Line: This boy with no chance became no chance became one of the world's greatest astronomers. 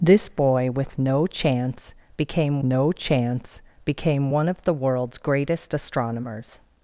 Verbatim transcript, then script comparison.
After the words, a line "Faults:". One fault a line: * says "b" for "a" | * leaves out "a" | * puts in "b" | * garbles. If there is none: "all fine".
This boy with no chance became no chance became one of the world's greatest astronomers.
Faults:
all fine